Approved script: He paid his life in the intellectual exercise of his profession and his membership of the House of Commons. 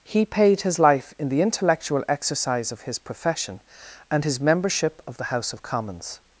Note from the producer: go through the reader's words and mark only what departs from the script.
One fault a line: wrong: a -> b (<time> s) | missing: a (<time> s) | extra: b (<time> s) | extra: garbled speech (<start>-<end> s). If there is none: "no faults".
no faults